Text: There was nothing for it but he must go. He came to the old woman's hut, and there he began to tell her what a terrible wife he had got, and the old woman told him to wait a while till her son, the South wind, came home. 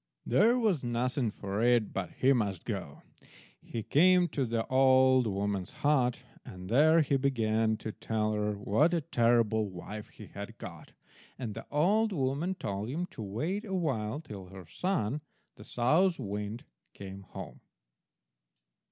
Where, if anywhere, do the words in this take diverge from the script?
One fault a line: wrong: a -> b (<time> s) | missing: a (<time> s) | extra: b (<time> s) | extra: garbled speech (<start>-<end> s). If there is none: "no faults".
no faults